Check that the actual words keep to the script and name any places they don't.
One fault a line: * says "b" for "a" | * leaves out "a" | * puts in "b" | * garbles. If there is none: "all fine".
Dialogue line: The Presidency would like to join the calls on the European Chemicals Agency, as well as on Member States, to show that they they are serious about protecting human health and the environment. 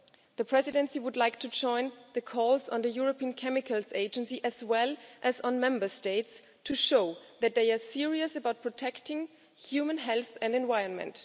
* leaves out "they"